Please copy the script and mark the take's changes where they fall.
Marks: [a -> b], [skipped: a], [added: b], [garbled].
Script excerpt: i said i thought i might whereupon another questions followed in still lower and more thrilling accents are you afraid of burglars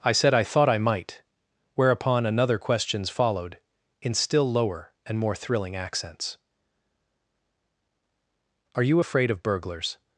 i said i thought i might whereupon another questions followed in still lower and more thrilling accents are you afraid of burglars